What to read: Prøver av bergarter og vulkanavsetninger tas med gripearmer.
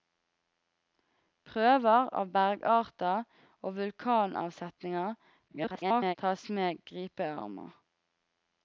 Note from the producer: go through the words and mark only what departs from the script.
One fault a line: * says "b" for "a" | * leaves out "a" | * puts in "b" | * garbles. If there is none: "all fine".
* garbles